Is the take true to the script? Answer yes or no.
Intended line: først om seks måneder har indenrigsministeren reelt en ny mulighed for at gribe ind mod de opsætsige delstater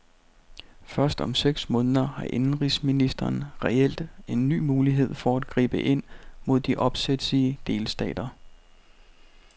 yes